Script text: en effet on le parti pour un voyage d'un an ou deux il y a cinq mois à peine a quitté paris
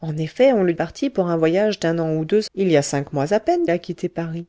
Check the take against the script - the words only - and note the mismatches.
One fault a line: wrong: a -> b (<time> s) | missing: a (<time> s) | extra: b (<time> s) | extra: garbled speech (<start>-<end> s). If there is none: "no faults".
no faults